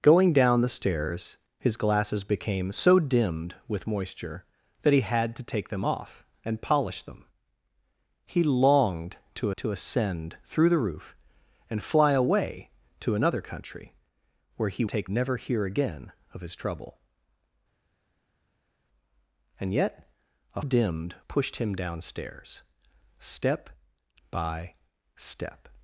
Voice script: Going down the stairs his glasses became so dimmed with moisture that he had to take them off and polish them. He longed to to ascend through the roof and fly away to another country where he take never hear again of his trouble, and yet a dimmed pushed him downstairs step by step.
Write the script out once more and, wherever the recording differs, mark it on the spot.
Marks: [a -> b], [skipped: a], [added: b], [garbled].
Going down the stairs his glasses became so dimmed with moisture that he had to take them off and polish them. He longed to to ascend through the roof and fly away to another country where he take never hear again of his trouble, and yet a dimmed pushed him downstairs step by step.